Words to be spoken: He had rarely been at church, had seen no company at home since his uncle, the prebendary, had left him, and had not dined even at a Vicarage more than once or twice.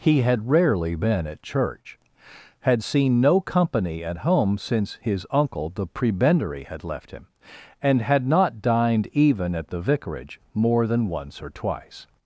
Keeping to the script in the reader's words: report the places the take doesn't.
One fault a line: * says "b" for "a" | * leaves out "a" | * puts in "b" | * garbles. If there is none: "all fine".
* says "the" for "a"